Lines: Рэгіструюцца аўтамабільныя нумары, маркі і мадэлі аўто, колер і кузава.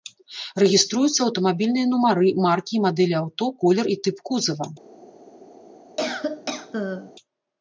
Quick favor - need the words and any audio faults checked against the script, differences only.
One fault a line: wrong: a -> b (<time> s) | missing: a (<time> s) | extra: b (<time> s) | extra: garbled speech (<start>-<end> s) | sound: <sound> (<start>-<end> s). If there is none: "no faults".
extra: тып (4.1 s)
sound: cough (6.0-7.1 s)